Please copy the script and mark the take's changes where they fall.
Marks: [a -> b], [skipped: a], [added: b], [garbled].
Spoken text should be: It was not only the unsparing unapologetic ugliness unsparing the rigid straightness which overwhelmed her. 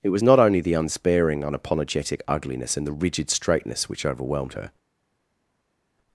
It was not only the unsparing unapologetic ugliness [unsparing -> and] the rigid straightness which overwhelmed her.